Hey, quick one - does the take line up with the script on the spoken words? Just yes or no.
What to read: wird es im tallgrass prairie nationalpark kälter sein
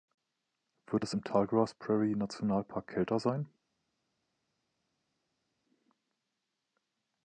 yes